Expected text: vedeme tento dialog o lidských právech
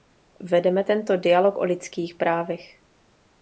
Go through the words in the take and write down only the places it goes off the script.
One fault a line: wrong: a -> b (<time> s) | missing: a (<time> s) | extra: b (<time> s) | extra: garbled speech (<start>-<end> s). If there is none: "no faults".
no faults